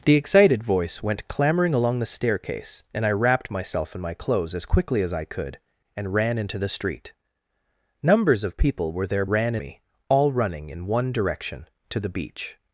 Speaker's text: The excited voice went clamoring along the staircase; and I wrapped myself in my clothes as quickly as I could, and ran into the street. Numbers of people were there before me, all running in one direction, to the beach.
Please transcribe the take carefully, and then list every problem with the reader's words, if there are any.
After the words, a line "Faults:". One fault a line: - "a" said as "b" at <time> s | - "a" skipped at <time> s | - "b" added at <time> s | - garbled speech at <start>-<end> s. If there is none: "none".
The excited voice went clamoring along the staircase; and I wrapped myself in my clothes as quickly as I could, and ran into the street. Numbers of people were there ran me, all running in one direction, to the beach.
Faults:
- "before" said as "ran" at 9.3 s